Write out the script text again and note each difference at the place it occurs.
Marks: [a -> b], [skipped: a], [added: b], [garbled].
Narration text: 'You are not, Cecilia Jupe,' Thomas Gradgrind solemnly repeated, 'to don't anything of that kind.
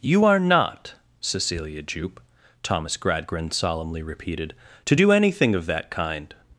'You are not, Cecilia Jupe,' Thomas Gradgrind solemnly repeated, 'to [don't -> do] anything of that kind.